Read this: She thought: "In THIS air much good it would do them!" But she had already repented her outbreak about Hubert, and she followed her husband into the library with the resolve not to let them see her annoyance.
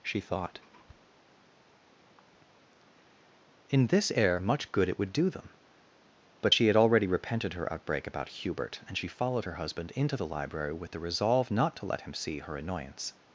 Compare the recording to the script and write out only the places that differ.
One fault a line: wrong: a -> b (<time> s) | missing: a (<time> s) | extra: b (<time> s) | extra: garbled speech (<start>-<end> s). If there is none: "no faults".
wrong: them -> him (12.0 s)